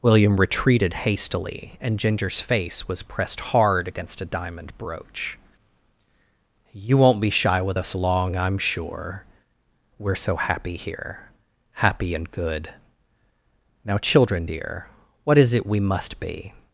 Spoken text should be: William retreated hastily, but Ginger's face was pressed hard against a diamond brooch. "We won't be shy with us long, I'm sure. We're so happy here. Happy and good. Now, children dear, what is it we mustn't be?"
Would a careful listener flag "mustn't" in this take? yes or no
yes